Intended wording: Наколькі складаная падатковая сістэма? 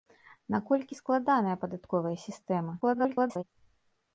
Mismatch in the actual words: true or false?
true